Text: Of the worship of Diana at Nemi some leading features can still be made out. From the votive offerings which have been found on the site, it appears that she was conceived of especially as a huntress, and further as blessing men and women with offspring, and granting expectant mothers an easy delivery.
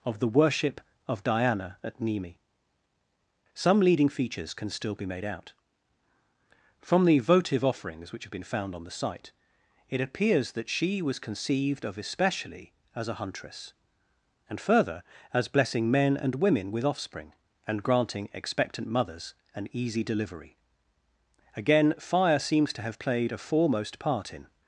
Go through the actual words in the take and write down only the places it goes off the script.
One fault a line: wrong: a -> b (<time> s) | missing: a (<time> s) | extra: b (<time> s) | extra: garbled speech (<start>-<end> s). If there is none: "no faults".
extra: Again fire seems to have played a foremost part in (21.6 s)